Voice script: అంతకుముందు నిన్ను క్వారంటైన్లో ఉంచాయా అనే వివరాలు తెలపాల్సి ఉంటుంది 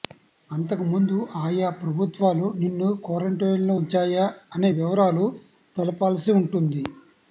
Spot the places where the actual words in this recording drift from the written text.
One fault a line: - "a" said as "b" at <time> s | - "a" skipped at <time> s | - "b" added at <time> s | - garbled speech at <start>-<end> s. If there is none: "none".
- "ఆయా ప్రభుత్వాలు" added at 1.4 s